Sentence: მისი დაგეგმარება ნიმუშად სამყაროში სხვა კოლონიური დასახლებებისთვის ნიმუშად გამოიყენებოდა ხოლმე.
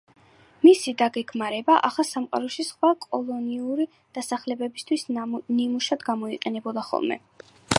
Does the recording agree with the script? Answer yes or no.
no